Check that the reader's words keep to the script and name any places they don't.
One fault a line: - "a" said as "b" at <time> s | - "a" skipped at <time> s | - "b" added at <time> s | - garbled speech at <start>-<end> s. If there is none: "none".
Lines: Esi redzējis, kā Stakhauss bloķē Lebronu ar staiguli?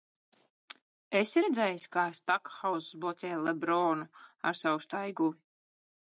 - "savu" added at 4.6 s